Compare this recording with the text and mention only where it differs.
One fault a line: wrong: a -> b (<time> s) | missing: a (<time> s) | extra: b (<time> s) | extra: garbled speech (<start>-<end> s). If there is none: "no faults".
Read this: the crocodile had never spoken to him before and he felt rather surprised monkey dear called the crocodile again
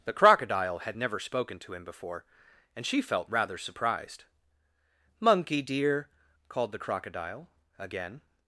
wrong: he -> she (2.9 s)